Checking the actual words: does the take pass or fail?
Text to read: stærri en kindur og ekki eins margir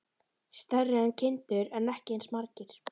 fail